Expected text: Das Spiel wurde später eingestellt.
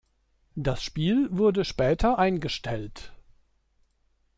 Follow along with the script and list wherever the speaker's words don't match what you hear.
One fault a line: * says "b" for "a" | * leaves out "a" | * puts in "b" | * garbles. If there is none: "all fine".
all fine